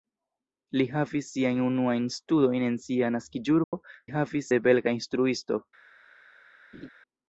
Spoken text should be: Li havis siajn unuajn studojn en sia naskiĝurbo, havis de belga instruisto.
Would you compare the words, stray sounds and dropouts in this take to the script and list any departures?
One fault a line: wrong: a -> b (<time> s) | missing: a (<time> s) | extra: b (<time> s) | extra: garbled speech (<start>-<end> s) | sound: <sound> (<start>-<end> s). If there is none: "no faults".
sound: dropout (3.6-3.7 s)
sound: laugh (6.7-6.9 s)